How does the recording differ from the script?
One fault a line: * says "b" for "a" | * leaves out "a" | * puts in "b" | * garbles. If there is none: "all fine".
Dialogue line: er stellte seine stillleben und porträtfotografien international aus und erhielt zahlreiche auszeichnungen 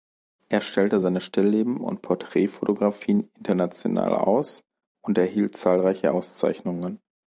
all fine